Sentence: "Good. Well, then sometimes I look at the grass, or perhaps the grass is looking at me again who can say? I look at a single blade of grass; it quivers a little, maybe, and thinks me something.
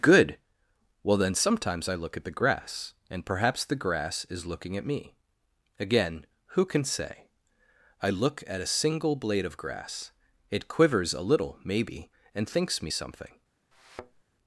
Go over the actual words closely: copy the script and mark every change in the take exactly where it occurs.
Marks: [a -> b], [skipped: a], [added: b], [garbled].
"Good. Well, then sometimes I look at the grass, [or -> and] perhaps the grass is looking at me again who can say? I look at a single blade of grass; it quivers a little, maybe, and thinks me something.